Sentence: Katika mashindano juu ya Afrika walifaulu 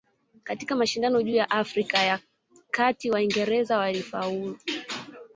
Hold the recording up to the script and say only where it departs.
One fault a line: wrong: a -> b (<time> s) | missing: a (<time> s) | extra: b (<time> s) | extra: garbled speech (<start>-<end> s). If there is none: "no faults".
extra: ya Kati Waingereza (2.0 s)